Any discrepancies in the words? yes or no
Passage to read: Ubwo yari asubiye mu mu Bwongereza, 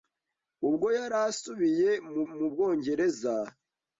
no